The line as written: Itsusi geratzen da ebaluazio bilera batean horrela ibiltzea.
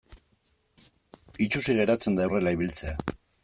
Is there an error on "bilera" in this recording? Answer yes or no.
yes